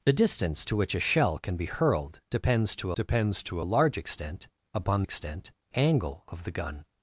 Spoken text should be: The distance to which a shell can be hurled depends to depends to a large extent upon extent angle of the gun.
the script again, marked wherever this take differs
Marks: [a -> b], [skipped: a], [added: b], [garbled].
The distance to which a shell can be hurled depends to depends to a large extent upon extent angle of the gun.